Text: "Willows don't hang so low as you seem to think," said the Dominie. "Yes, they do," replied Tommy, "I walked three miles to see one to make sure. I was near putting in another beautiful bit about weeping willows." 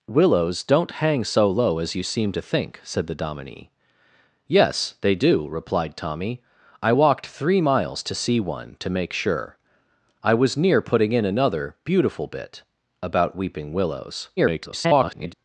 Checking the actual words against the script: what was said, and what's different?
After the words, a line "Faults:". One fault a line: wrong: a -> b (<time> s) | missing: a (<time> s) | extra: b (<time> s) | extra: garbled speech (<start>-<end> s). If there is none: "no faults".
"Willows don't hang so low as you seem to think," said the Dominie. "Yes, they do," replied Tommy, "I walked three miles to see one to make sure. I was near putting in another beautiful bit about weeping willows." [garbled]
Faults:
extra: garbled speech (14.4-15.3 s)